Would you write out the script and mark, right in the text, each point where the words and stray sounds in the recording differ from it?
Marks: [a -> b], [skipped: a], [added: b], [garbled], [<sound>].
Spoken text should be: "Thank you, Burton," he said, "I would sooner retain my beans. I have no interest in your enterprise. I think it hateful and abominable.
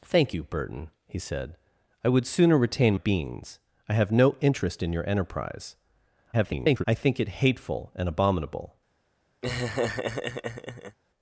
"Thank you, Burton," he said, "I would sooner retain [skipped: my] beans. I have no interest in your enterprise. [garbled] I think it hateful and abominable. [laugh]